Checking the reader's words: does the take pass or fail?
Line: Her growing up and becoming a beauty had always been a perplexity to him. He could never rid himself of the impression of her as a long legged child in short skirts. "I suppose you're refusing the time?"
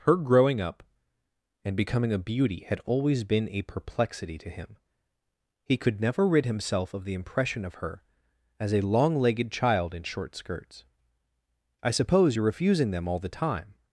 fail